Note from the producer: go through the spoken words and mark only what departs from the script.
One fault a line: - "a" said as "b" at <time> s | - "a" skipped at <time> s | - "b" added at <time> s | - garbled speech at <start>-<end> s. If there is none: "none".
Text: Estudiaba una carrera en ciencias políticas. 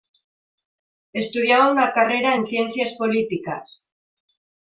none